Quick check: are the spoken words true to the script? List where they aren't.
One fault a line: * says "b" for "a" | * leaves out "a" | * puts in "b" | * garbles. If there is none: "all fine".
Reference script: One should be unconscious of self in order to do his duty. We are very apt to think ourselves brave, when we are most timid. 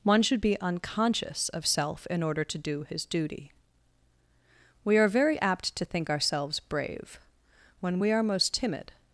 all fine